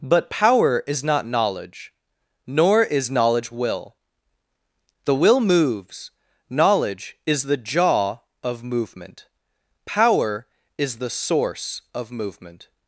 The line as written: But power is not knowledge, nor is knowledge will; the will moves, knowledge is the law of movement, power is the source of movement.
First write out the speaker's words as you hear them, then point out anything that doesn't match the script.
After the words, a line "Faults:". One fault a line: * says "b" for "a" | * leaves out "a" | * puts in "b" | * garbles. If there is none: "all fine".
But power is not knowledge, nor is knowledge will; the will moves, knowledge is the jaw of movement, power is the source of movement.
Faults:
* says "jaw" for "law"